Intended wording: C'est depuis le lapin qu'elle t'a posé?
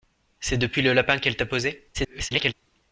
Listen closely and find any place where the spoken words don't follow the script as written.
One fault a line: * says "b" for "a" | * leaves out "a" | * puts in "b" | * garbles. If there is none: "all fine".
* garbles